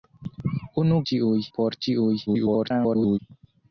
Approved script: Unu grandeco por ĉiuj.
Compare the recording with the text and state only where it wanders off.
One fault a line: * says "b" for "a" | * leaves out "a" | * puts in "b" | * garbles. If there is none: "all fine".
* says "ĉiuj" for "grandeco"
* garbles